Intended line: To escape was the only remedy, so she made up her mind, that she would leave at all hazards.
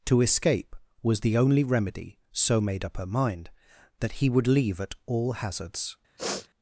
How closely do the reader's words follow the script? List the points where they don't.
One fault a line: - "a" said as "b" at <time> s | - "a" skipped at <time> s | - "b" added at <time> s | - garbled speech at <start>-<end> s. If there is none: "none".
- "she" skipped at 2.6 s
- "she" said as "he" at 4.1 s